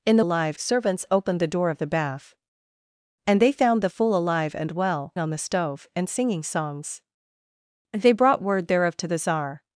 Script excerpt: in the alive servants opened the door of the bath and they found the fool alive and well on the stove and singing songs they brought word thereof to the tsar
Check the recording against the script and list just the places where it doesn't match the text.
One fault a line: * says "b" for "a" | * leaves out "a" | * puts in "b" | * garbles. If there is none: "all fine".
all fine